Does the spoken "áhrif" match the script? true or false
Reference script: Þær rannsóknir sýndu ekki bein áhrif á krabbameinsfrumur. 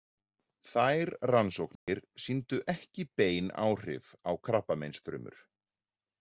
true